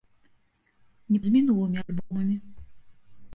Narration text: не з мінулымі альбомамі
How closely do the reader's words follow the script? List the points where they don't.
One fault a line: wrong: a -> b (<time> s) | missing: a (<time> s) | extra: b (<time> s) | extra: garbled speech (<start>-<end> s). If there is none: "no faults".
no faults